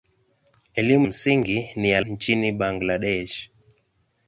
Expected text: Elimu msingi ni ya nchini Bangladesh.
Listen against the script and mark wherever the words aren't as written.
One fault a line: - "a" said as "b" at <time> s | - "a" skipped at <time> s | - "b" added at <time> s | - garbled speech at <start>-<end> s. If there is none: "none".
none